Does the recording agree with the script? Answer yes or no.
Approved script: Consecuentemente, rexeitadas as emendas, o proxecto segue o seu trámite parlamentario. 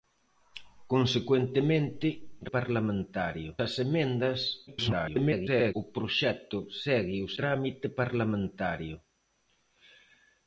no